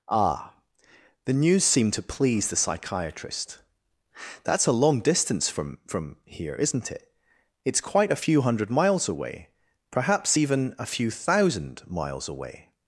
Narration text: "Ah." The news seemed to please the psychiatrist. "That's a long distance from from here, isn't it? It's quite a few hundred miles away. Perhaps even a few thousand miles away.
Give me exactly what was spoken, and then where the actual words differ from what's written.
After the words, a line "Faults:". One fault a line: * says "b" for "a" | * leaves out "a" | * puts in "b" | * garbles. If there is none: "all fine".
"Ah." The news seemed to please the psychiatrist. "That's a long distance from from here, isn't it? It's quite a few hundred miles away. Perhaps even a few thousand miles away.
Faults:
all fine